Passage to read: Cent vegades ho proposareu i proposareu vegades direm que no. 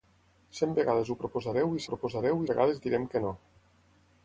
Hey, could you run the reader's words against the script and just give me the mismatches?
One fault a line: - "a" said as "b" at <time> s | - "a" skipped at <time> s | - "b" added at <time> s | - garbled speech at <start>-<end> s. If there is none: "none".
none